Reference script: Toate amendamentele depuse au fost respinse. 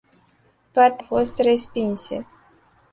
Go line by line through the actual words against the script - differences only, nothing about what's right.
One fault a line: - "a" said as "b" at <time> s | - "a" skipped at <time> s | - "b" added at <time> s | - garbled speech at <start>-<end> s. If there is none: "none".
- "amendamentele depuse au" skipped at 1.0 s